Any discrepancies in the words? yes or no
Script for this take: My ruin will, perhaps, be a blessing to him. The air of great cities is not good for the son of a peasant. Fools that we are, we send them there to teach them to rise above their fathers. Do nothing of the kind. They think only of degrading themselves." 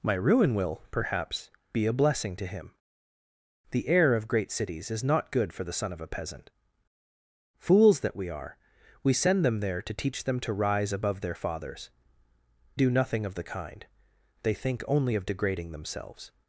no